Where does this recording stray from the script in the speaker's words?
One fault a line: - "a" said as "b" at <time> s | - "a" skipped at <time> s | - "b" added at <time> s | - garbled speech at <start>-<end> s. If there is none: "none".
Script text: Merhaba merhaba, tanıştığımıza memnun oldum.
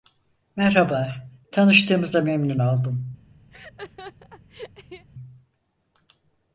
- "merhaba" skipped at 1.1 s